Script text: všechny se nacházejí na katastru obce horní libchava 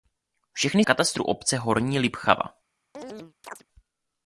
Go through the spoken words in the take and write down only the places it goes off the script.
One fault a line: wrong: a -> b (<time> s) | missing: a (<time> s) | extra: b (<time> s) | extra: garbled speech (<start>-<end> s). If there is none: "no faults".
missing: se nacházejí na (0.8 s)